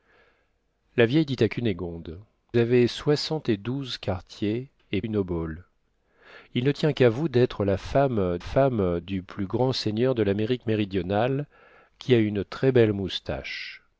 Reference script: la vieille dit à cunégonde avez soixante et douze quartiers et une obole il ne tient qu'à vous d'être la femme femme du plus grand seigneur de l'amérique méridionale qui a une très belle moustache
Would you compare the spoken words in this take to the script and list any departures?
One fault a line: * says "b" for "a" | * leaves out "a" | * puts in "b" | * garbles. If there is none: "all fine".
all fine